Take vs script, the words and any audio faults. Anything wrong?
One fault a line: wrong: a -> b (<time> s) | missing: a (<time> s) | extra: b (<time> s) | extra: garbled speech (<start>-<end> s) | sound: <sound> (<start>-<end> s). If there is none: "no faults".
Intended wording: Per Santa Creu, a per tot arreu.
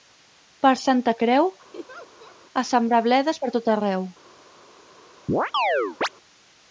sound: laugh (1.7-2.4 s)
extra: sembrar bledes (2.7 s)
sound: chirp (5.3-6.1 s)